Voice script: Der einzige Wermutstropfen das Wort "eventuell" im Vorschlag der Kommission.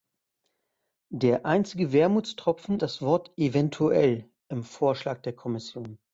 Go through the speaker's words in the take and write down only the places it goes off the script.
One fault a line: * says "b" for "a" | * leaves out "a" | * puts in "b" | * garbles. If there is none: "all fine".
all fine